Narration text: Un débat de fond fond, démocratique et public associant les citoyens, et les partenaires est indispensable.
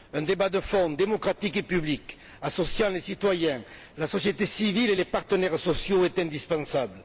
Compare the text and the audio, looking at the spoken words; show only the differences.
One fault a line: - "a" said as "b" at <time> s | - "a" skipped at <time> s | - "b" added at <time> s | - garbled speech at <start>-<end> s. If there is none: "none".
- "fond" skipped at 0.9 s
- "la société civile" added at 4.0 s
- "sociaux" added at 5.6 s